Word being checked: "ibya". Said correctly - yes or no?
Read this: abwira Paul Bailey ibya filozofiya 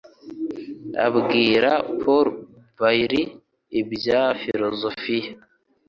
yes